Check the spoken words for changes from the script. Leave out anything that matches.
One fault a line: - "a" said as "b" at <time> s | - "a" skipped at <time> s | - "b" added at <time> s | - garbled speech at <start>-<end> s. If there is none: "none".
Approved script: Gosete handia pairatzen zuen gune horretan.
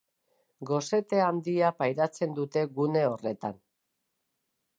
- "zuen" said as "dute" at 2.4 s